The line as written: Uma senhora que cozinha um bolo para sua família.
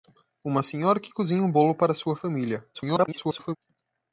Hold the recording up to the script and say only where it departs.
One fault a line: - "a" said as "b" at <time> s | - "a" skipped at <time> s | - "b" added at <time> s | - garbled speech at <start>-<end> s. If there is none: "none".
- garbled speech at 2.7-3.6 s